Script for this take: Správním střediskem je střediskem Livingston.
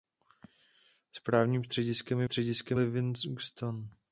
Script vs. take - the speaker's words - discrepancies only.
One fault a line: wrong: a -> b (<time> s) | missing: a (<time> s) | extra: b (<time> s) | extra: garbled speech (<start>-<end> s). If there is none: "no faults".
no faults